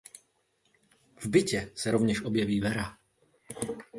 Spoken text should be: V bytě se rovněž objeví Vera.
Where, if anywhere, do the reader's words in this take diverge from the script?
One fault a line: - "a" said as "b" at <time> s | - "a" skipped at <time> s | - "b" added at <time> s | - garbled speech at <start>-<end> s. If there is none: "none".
none